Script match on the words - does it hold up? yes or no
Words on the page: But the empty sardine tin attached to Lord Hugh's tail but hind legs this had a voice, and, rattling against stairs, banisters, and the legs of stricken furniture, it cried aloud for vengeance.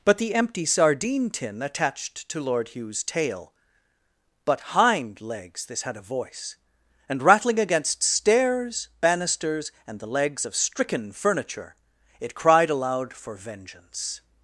yes